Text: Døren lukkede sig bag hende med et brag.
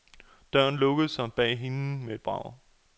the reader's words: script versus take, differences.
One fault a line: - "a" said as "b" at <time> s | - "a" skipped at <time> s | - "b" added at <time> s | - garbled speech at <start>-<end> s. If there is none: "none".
none